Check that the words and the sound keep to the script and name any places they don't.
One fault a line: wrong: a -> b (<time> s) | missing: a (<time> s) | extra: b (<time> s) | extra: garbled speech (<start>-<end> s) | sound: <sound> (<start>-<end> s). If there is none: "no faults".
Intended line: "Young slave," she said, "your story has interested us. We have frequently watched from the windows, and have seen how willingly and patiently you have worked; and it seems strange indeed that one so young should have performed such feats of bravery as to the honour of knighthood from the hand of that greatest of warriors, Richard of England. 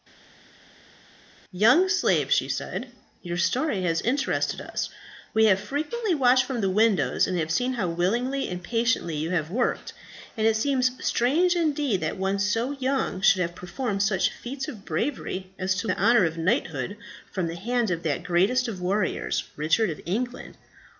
no faults